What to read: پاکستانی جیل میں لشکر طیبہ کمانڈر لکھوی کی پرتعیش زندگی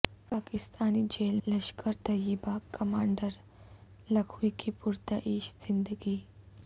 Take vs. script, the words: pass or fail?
fail